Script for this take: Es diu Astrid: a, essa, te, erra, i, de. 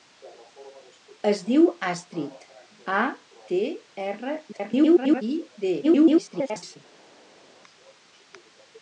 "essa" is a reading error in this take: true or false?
true